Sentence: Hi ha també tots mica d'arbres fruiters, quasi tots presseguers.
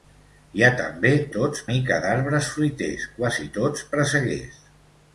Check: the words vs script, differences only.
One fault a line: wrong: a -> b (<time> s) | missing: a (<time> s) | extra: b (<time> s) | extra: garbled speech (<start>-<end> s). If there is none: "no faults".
no faults